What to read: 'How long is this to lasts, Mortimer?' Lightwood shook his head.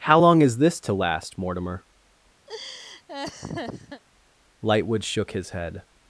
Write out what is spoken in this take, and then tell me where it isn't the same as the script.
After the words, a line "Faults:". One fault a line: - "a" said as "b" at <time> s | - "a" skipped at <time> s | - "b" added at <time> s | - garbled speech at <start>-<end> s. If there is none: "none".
'How long is this to last, Mortimer?' Lightwood shook his head.
Faults:
- "lasts" said as "last" at 0.9 s